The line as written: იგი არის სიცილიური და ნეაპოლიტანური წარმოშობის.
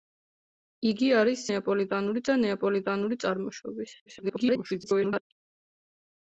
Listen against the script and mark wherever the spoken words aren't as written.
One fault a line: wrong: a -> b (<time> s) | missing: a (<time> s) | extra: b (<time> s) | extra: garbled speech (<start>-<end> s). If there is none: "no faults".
wrong: სიცილიური -> ნეაპოლიტანური (1.5 s)
extra: garbled speech (4.1-5.2 s)